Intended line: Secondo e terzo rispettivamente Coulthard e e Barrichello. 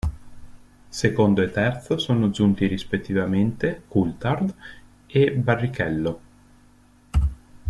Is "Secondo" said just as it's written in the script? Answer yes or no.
yes